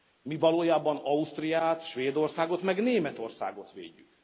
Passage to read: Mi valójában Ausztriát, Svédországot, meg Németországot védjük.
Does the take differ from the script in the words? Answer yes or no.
no